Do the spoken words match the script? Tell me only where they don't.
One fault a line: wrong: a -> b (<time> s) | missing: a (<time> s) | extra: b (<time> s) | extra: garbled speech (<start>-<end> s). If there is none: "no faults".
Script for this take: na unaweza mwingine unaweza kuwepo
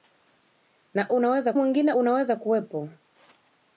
no faults